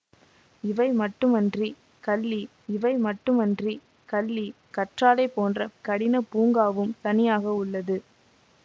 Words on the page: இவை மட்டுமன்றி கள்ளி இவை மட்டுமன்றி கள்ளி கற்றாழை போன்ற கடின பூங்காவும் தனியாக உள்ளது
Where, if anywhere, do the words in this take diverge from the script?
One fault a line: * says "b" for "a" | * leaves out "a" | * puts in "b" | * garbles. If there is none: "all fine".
all fine